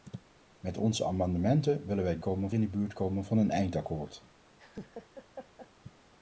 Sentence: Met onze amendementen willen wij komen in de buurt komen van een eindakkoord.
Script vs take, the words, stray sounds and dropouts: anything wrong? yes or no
yes